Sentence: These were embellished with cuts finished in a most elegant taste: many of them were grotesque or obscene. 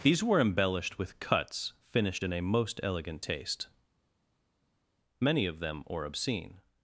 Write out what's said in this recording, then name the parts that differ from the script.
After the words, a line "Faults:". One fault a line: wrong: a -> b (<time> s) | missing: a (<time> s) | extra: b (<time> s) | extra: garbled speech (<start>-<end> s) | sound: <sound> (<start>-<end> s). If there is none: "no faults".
These were embellished with cuts finished in a most elegant taste: many of them or obscene.
Faults:
missing: were grotesque (5.8 s)